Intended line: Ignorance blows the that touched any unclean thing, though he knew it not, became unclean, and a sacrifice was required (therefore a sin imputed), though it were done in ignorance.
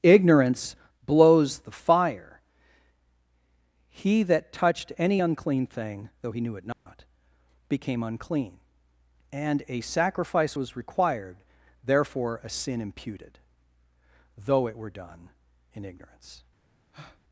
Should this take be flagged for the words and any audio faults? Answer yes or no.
yes